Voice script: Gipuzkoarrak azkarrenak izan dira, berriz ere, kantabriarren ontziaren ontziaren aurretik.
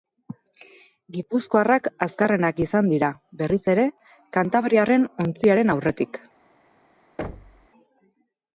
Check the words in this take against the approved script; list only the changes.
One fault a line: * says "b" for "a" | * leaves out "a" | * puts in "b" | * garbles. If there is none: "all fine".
* leaves out "ontziaren"